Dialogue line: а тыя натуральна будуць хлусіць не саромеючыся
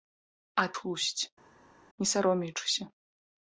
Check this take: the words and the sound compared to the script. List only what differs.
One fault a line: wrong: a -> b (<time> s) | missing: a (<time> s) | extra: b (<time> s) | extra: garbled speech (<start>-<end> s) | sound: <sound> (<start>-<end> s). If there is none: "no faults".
missing: тыя натуральна будуць (0.7 s)